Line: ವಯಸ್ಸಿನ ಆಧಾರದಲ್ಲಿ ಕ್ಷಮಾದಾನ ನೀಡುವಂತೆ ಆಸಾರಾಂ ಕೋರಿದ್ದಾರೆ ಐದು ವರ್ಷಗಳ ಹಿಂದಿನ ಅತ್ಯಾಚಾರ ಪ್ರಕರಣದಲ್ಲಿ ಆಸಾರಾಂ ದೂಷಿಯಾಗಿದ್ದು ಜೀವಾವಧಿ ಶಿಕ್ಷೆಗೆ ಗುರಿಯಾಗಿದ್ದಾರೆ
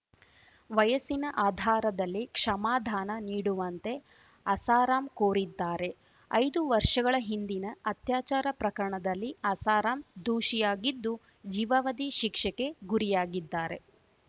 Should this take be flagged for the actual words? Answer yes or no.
no